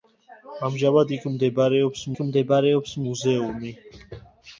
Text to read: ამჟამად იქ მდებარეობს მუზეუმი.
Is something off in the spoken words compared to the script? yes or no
yes